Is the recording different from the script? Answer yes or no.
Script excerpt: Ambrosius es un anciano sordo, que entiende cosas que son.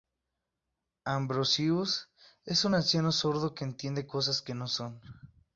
yes